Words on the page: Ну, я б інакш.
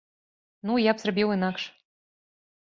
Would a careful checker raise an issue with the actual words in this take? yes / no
yes